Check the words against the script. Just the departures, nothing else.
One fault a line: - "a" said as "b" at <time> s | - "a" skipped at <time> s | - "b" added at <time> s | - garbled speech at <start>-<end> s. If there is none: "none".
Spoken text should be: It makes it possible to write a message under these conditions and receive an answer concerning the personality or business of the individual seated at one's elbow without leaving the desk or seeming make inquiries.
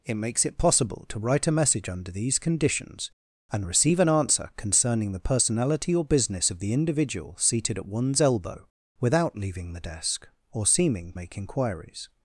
none